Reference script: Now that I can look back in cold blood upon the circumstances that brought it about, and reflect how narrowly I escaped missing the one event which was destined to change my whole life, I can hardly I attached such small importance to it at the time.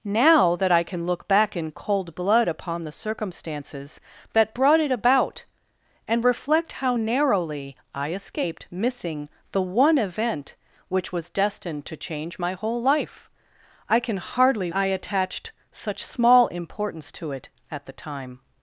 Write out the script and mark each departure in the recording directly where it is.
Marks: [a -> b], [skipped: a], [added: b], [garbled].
Now that I can look back in cold blood upon the circumstances that brought it about, and reflect how narrowly I escaped missing the one event which was destined to change my whole life, I can hardly I attached such small importance to it at the time.